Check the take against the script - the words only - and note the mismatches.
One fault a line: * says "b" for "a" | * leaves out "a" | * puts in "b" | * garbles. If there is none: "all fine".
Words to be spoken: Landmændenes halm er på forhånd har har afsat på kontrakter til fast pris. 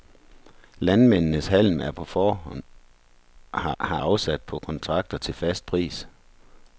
all fine